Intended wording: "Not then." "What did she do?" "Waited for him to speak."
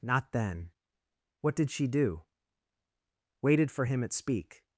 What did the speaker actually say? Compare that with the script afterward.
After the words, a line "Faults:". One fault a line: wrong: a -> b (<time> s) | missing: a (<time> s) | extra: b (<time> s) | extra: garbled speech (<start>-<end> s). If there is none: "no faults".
"Not then." "What did she do?" "Waited for him at speak."
Faults:
wrong: to -> at (4.0 s)